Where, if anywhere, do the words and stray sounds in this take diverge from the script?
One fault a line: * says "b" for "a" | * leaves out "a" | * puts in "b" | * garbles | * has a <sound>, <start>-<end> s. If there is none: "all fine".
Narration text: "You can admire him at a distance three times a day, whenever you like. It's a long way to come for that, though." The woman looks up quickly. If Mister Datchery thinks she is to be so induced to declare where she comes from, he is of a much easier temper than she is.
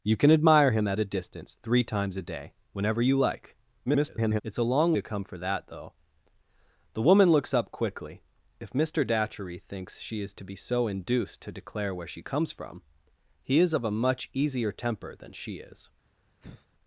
* garbles
* leaves out "way"
* has a sigh, 16.4-16.7 s